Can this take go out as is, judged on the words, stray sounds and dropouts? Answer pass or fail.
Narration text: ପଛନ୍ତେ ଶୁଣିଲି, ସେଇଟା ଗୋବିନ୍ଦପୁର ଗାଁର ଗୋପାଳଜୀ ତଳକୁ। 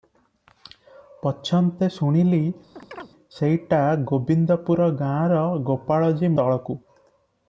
fail